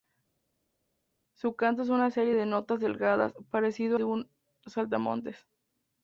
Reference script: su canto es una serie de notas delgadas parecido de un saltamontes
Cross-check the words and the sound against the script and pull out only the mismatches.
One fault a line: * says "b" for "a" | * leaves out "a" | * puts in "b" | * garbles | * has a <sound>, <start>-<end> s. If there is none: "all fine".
all fine